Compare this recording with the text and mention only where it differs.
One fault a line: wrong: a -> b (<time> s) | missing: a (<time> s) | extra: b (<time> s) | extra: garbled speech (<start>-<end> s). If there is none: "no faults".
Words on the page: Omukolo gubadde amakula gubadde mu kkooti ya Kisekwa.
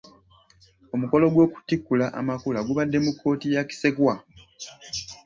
wrong: gubadde -> gw'okutikkula (1.3 s)